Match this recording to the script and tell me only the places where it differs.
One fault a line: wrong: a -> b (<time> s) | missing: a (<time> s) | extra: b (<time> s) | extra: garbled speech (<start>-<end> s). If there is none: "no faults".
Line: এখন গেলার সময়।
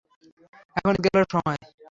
no faults